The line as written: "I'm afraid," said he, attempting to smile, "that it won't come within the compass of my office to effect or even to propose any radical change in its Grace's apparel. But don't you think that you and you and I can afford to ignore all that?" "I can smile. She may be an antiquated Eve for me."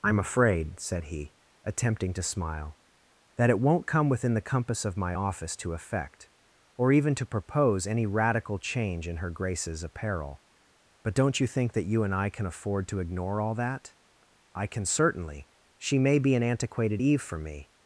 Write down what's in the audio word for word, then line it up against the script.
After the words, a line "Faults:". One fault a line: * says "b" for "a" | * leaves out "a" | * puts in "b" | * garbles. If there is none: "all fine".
"I'm afraid," said he, attempting to smile, "that it won't come within the compass of my office to effect or even to propose any radical change in her Grace's apparel. But don't you think that you and I can afford to ignore all that?" "I can certainly. She may be an antiquated Eve for me."
Faults:
* says "her" for "its"
* leaves out "you and"
* says "certainly" for "smile"